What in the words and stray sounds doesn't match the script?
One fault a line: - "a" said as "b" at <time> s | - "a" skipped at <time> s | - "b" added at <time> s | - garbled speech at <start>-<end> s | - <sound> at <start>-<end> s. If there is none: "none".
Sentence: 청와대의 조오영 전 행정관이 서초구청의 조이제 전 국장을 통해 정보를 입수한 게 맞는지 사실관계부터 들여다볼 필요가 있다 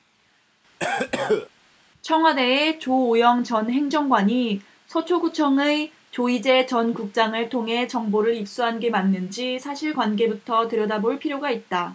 - cough at 0.8-1.5 s